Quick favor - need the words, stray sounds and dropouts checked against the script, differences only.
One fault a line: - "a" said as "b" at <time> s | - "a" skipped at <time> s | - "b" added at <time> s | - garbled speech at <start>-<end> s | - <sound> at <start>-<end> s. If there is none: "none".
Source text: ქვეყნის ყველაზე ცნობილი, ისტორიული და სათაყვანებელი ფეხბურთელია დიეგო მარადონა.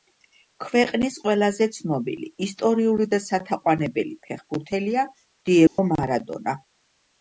- dropout at 5.7-5.8 s